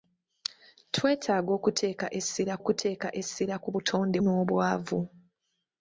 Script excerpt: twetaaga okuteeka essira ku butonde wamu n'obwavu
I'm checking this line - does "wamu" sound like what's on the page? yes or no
no